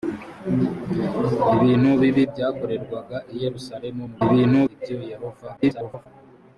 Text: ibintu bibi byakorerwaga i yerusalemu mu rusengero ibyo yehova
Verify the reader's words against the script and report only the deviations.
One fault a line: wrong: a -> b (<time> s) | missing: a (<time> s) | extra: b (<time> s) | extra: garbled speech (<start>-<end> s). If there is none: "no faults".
wrong: rusengero -> ibintu (4.2 s)
extra: garbled speech (5.6-6.1 s)